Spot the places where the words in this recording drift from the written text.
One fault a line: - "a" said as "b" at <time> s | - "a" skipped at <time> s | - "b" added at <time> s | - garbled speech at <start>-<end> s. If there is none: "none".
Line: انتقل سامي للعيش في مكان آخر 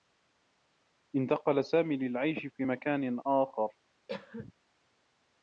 none